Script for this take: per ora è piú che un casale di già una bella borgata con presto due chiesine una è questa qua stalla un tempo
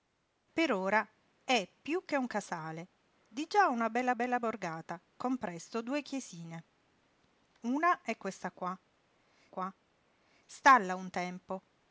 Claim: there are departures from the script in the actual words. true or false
true